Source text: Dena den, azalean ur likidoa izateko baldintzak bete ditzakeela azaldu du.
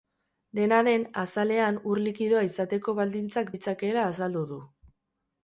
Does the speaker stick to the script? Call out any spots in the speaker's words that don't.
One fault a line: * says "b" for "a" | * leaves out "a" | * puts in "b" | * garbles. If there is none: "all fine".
* leaves out "bete"